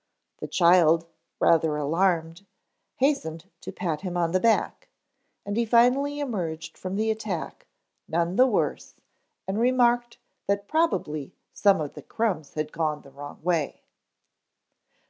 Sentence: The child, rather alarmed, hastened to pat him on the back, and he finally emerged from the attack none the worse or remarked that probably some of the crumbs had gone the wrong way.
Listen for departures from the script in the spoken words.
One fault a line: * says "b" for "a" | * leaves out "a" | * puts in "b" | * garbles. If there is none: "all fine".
* says "and" for "or"